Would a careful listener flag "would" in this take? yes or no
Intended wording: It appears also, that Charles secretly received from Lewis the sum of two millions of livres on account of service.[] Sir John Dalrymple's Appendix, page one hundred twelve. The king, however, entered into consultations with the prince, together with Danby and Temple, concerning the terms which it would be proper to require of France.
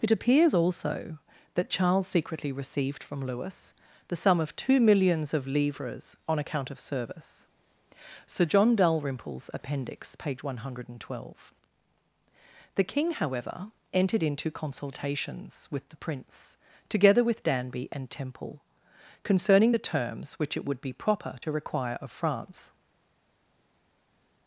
no